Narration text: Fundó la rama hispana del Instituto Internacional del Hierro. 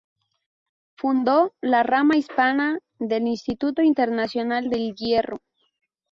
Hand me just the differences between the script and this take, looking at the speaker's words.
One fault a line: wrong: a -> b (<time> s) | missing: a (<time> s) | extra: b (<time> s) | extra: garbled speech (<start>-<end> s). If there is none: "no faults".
no faults